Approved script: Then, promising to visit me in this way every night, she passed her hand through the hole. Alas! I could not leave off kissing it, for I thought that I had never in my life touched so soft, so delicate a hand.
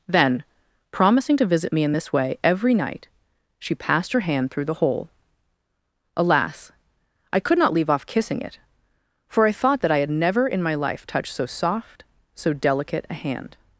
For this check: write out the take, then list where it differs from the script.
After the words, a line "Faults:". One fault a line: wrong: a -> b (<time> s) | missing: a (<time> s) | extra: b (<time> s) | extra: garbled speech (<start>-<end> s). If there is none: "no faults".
Then, promising to visit me in this way every night, she passed her hand through the hole. Alas! I could not leave off kissing it, for I thought that I had never in my life touched so soft, so delicate a hand.
Faults:
no faults